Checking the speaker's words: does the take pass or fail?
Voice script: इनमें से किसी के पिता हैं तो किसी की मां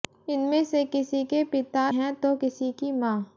pass